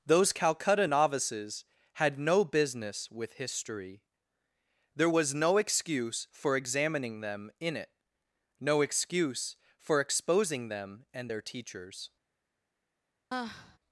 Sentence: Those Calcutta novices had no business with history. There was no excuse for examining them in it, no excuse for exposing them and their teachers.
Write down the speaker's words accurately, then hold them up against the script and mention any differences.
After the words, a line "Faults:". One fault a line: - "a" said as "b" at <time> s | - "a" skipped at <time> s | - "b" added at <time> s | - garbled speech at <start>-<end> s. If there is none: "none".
Those Calcutta novices had no business with history. There was no excuse for examining them in it, no excuse for exposing them and their teachers.
Faults:
none